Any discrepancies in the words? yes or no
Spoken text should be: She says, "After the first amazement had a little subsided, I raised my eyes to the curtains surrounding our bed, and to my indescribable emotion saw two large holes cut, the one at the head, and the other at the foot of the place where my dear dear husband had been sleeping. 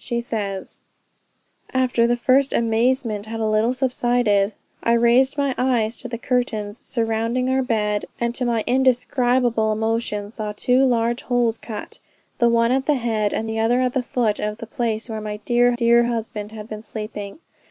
no